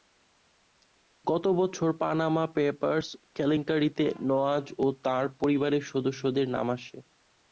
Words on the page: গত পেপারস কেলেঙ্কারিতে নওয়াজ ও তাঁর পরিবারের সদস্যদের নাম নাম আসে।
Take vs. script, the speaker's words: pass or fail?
fail